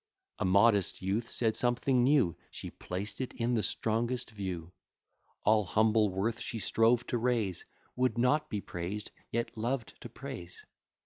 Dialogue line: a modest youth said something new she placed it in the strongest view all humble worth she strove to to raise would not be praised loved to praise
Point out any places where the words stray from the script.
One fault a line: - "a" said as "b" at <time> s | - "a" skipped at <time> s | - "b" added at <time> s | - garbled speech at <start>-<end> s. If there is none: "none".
- "to" skipped at 7.2 s
- "yet" added at 9.3 s